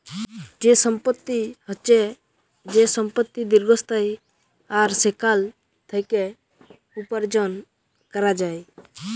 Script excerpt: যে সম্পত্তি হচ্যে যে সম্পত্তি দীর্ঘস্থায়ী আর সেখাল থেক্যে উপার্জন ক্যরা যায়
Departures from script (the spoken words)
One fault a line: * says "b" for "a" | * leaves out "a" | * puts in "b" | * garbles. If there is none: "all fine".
all fine